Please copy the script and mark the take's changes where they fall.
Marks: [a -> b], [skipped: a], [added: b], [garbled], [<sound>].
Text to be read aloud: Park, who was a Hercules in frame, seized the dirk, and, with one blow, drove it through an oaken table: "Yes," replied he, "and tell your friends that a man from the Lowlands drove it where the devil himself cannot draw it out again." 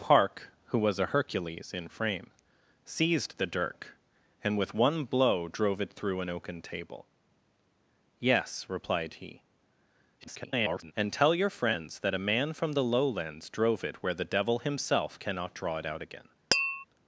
Park, who was a Hercules in frame, seized the dirk, and, with one blow, drove it through an oaken table: "Yes," replied he, [garbled] "and tell your friends that a man from the Lowlands drove it where the devil himself cannot draw it out again." [tap]